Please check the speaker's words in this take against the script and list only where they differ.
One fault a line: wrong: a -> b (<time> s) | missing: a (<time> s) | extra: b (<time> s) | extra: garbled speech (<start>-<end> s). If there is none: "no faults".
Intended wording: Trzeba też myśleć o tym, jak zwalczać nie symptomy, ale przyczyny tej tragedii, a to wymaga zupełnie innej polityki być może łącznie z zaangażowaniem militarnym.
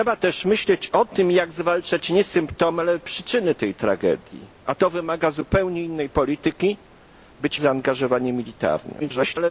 missing: może łącznie (7.6 s)
extra: garbled speech (9.0-9.5 s)